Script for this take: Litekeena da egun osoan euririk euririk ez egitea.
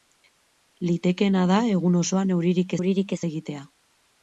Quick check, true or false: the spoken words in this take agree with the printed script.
true